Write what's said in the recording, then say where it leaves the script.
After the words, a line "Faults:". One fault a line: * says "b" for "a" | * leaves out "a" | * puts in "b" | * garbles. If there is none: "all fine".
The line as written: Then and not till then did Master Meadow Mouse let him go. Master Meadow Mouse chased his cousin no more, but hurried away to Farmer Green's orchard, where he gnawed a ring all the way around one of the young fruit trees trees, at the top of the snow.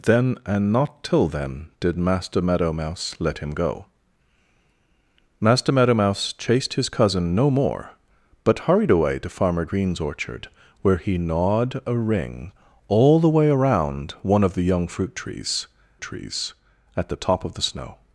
Then and not till then did Master Meadow Mouse let him go. Master Meadow Mouse chased his cousin no more, but hurried away to Farmer Green's orchard, where he gnawed a ring all the way around one of the young fruit trees trees, at the top of the snow.
Faults:
all fine